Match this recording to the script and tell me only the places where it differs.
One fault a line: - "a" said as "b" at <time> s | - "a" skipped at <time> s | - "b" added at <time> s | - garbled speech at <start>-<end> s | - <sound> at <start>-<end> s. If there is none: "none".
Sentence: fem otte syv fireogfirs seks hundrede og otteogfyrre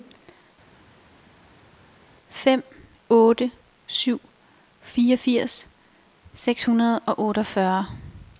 none